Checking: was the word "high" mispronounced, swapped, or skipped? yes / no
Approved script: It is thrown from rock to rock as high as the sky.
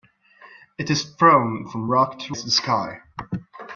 yes